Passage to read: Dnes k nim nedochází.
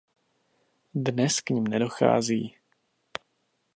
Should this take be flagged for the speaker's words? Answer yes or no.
no